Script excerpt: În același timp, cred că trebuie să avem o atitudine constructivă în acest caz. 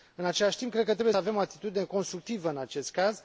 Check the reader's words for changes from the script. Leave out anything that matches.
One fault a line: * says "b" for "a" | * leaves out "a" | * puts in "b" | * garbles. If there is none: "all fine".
* leaves out "să"